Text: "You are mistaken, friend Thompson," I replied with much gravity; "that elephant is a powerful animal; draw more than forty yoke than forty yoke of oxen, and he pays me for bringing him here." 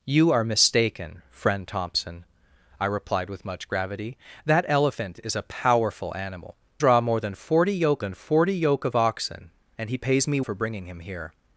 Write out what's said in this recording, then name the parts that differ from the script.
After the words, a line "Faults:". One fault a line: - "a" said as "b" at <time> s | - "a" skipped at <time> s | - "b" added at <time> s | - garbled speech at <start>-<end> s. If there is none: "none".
"You are mistaken, friend Thompson," I replied with much gravity; "that elephant is a powerful animal; draw more than forty yoke than forty yoke of oxen, and he pays me for bringing him here."
Faults:
none